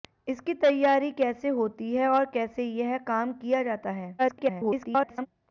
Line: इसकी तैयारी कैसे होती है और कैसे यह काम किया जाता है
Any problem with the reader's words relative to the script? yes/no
yes